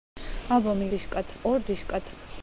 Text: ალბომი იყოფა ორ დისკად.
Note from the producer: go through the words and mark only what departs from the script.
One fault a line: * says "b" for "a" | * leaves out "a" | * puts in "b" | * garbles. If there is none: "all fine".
* says "დისკად" for "იყოფა"